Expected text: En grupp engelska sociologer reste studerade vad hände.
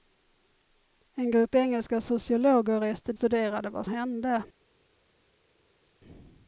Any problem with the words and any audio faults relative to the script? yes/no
no